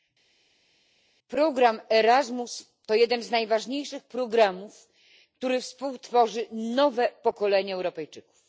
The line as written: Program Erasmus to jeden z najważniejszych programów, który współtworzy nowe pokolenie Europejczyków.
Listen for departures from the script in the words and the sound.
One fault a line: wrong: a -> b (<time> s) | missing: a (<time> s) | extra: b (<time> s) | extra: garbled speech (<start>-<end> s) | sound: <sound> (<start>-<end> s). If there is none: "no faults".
no faults